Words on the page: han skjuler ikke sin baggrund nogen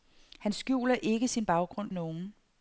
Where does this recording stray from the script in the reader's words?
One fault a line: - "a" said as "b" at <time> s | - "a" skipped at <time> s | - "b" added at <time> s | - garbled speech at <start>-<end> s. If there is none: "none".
none